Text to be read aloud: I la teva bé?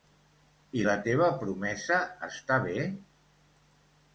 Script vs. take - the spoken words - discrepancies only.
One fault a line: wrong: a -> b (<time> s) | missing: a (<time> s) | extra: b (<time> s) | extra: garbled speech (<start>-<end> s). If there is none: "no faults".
extra: promesa està (1.4 s)